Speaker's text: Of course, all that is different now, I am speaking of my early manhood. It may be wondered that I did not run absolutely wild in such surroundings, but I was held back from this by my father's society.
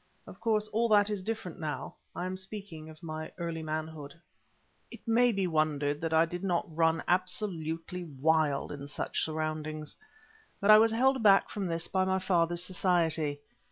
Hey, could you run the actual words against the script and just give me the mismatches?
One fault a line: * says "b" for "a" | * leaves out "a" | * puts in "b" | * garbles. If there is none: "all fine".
all fine